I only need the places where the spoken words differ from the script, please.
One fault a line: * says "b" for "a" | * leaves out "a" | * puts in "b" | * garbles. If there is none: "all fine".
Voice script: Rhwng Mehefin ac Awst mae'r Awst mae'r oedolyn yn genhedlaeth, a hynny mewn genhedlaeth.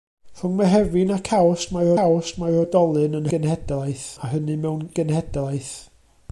all fine